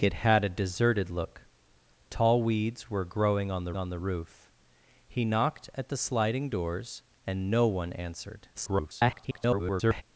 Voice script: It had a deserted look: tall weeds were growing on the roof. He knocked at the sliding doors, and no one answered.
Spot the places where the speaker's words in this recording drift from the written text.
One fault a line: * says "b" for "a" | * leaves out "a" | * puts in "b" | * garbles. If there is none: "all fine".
* puts in "on the"
* garbles